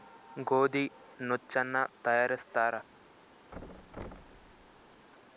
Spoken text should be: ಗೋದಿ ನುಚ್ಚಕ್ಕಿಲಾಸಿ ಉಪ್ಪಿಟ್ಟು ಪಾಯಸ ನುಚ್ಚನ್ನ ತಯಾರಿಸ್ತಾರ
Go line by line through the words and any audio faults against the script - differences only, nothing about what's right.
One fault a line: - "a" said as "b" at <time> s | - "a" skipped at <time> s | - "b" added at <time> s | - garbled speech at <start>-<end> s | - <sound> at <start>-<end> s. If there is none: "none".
- "ನುಚ್ಚಕ್ಕಿಲಾಸಿ ಉಪ್ಪಿಟ್ಟು ಪಾಯಸ" skipped at 0.8 s
- thud at 3.5-5.1 s